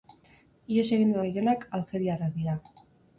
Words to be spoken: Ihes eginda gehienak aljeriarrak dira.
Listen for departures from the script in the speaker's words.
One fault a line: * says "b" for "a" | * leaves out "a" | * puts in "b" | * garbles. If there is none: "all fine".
all fine